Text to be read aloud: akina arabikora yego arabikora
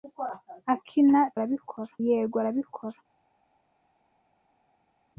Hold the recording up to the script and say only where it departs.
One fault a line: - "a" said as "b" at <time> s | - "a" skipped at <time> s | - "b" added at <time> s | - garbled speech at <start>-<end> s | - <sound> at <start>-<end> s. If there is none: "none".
none